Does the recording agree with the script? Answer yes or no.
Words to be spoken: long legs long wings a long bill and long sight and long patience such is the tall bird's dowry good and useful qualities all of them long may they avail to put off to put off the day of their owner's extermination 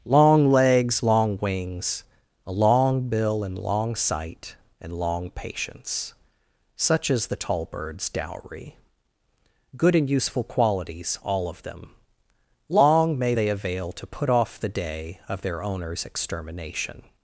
no